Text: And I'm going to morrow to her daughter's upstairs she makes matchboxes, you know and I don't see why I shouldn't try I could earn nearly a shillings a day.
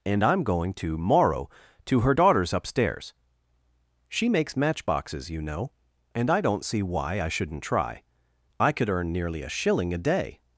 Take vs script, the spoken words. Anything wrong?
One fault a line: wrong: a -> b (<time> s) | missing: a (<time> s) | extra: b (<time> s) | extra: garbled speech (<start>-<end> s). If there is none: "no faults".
wrong: shillings -> shilling (9.5 s)